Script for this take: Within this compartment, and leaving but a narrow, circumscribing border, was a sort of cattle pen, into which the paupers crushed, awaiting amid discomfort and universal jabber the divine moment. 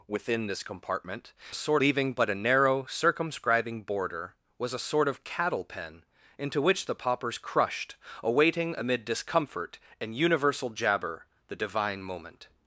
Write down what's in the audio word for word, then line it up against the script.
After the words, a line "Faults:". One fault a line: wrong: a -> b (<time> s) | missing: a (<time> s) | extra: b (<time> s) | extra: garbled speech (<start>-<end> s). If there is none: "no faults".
Within this compartment, sort leaving but a narrow, circumscribing border, was a sort of cattle pen, into which the paupers crushed, awaiting amid discomfort and universal jabber the divine moment.
Faults:
wrong: and -> sort (1.5 s)